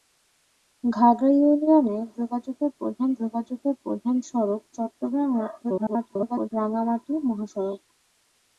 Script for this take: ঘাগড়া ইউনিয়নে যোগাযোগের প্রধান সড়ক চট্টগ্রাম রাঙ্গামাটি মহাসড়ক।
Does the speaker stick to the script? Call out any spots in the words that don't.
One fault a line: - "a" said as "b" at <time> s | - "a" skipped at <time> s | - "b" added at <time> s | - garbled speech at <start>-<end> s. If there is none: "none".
- "যোগাযোগের প্রধান" added at 3.2 s
- garbled speech at 5.6-6.5 s